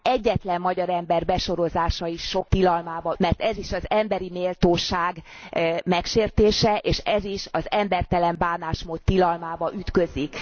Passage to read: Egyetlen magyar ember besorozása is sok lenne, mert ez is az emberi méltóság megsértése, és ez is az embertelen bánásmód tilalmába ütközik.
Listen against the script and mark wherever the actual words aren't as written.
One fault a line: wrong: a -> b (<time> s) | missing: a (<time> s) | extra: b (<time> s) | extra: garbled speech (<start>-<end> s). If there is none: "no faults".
wrong: lenne -> tilalmába (2.4 s)